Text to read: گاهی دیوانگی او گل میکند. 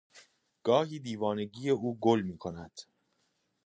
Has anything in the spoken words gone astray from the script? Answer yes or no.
no